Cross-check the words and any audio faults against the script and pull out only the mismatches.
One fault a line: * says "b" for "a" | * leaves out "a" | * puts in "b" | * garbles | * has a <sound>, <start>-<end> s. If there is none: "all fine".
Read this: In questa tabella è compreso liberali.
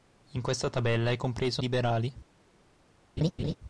* has a laugh, 3.2-3.5 s